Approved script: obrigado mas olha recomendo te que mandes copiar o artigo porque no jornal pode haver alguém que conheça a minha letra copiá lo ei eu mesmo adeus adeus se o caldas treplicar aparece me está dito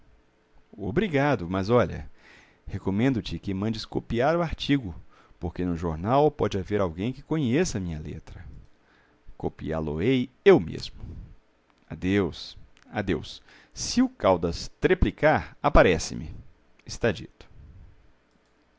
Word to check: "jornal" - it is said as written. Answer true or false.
true